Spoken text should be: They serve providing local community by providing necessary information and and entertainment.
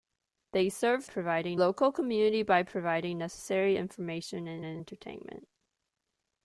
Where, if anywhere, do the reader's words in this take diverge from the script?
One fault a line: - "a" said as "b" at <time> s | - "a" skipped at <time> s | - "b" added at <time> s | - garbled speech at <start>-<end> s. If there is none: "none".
none